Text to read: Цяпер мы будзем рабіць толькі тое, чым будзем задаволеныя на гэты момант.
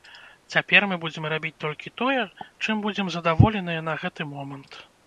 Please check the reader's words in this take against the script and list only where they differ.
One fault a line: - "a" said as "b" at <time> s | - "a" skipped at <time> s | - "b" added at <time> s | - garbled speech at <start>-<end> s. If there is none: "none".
none